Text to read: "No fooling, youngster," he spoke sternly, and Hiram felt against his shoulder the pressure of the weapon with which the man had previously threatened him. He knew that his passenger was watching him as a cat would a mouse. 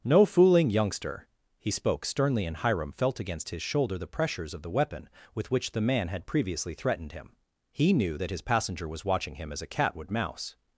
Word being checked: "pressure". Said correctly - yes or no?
no